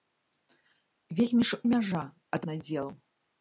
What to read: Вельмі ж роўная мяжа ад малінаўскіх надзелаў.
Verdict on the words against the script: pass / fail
fail